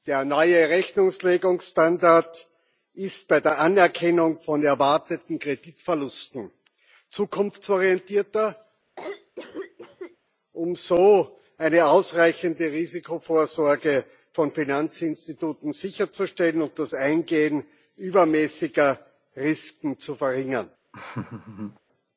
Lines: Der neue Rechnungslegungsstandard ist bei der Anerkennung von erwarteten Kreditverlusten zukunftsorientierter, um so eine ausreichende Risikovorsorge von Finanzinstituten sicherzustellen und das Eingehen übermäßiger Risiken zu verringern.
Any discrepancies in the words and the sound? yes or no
yes